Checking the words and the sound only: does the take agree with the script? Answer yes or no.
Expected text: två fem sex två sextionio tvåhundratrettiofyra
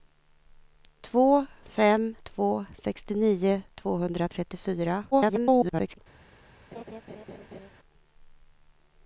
no